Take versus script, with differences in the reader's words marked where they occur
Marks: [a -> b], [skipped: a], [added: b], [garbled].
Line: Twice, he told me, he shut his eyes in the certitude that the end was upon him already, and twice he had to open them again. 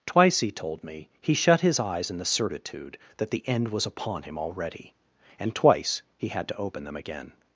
Twice, he told me, he shut his eyes in the certitude that the end was upon him already, and twice he had to open them again.